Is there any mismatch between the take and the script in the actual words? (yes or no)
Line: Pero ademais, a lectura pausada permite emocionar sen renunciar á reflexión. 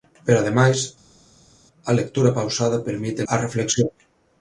yes